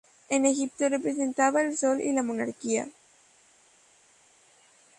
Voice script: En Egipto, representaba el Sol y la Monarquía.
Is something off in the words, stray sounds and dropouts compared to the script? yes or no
no